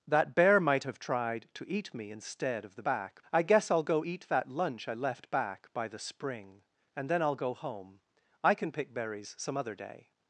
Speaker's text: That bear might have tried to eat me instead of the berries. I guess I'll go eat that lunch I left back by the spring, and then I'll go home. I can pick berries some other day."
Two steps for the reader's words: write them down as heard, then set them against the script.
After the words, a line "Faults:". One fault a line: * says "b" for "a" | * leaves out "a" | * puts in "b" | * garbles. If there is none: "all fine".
That bear might have tried to eat me instead of the back. I guess I'll go eat that lunch I left back by the spring, and then I'll go home. I can pick berries some other day."
Faults:
* says "back" for "berries"